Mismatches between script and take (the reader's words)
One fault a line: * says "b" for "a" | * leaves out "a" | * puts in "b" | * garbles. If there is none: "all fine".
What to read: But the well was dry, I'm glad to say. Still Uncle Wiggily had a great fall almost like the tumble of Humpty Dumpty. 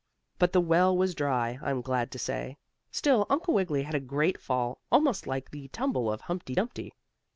all fine